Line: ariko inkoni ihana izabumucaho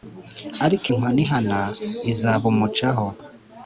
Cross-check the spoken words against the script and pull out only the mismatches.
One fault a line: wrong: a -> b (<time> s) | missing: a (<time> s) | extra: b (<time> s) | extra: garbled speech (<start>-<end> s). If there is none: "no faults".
no faults